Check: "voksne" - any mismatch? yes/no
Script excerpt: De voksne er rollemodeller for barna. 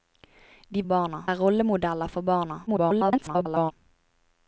yes